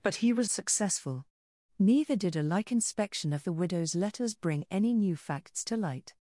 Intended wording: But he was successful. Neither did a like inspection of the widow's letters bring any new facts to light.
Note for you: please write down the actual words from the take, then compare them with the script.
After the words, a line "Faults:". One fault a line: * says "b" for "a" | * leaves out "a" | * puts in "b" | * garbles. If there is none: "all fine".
But he was successful. Neither did a like inspection of the widow's letters bring any new facts to light.
Faults:
all fine